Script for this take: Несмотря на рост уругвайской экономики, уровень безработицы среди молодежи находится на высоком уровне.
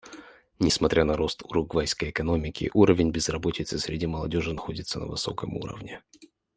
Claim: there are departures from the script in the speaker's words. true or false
false